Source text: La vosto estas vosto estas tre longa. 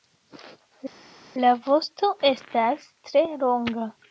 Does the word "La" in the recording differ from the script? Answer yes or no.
no